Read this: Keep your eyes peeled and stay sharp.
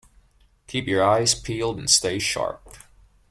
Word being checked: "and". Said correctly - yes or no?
yes